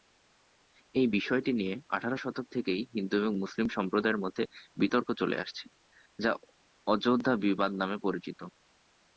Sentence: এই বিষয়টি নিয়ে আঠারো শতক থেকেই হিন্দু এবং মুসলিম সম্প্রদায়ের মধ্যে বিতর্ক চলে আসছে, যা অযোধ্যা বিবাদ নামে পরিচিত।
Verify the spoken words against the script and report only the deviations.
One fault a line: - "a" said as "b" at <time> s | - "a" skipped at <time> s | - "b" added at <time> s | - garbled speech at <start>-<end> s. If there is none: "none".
none